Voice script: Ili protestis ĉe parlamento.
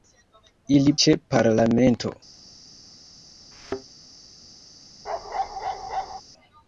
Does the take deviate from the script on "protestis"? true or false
true